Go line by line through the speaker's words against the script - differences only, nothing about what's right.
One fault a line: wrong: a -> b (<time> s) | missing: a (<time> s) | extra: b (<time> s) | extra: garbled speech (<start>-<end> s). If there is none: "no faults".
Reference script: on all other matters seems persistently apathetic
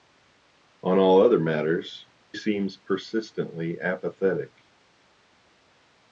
no faults